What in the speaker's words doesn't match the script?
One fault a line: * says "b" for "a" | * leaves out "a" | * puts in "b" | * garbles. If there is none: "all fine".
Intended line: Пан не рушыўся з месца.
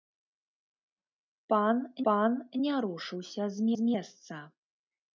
* puts in "пан"
* puts in "з"